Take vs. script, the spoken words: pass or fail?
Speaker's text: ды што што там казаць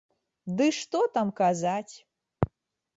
fail